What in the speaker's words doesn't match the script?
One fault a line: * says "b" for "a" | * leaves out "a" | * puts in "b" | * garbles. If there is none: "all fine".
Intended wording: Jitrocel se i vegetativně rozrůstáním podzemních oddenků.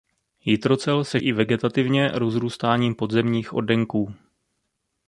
all fine